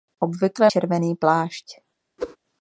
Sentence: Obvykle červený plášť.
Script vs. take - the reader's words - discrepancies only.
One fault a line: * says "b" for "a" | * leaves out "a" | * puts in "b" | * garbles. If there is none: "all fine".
all fine